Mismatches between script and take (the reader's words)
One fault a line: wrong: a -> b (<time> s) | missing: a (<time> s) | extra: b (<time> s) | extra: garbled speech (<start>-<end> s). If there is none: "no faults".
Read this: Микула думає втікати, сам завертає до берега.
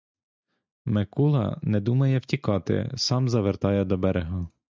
extra: не (1.6 s)